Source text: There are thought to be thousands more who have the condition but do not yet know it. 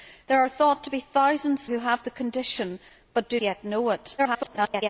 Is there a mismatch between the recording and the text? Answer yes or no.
yes